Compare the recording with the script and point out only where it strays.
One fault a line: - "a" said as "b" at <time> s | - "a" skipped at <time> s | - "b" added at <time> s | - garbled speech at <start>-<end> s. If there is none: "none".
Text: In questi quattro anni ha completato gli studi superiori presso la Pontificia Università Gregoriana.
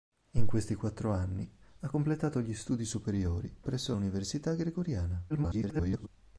- "la Pontificia" skipped at 3.9 s
- garbled speech at 5.3-6.1 s